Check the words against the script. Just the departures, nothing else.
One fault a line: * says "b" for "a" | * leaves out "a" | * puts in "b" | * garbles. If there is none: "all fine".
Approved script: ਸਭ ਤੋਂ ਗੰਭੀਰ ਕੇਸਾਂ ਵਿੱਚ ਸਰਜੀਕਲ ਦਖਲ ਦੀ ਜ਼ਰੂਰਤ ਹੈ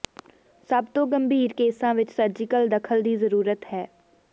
all fine